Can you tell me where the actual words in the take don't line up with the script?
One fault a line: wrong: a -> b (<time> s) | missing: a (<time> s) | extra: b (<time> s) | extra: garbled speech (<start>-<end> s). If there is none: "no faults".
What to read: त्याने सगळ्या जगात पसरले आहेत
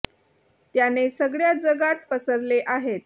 no faults